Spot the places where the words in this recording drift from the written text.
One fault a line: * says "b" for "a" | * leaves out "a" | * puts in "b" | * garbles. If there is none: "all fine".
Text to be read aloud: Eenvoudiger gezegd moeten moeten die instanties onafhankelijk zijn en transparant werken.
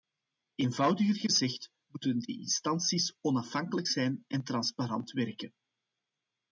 * leaves out "moeten"